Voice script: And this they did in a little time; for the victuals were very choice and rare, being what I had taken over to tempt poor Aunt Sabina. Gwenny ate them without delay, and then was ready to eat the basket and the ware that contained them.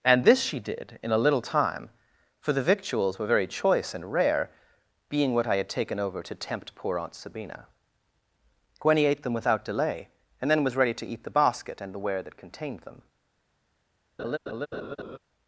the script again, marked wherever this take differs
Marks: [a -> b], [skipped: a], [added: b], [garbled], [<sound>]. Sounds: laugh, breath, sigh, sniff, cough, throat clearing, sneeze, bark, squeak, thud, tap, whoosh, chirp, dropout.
And this [they -> she] did in a little time; for the victuals were very choice and rare, being what I had taken over to tempt poor Aunt Sabina. Gwenny ate them without delay, and then was ready to eat the basket and the ware that contained them. [laugh]